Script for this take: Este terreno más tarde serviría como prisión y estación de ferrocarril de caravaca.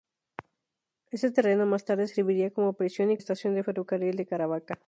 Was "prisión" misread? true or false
false